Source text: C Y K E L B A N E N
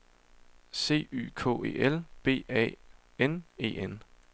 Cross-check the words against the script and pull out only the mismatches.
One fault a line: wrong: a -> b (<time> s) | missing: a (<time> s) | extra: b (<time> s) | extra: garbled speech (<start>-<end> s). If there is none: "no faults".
no faults